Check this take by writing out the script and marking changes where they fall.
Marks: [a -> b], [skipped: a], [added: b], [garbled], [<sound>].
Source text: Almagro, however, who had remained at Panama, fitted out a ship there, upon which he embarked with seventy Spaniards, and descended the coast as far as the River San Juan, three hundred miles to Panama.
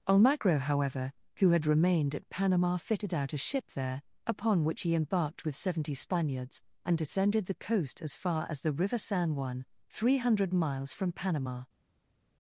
Almagro, however, who had remained at Panama, fitted out a ship there, upon which he embarked with seventy Spaniards, and descended the coast as far as the River San Juan, three hundred miles [to -> from] Panama.